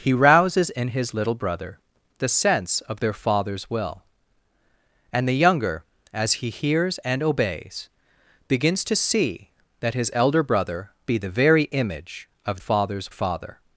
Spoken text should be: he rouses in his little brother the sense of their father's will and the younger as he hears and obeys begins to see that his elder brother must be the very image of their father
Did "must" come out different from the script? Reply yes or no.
yes